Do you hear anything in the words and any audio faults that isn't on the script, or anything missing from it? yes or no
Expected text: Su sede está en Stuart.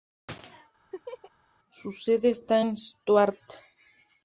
yes